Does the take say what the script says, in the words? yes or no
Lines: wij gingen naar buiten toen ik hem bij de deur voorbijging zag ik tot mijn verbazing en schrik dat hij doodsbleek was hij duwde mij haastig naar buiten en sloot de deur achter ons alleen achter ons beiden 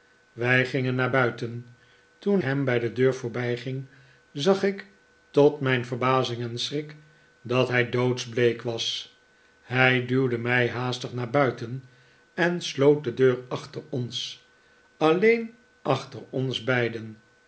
no